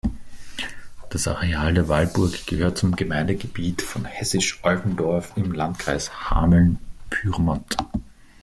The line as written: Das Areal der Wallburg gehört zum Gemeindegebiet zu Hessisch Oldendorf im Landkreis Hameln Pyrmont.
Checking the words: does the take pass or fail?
fail